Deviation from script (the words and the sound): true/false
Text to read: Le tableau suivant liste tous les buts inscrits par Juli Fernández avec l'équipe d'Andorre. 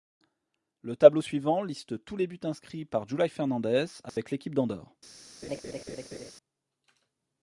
true